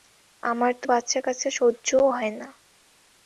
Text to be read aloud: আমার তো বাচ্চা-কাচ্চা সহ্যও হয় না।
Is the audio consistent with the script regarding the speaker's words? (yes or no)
yes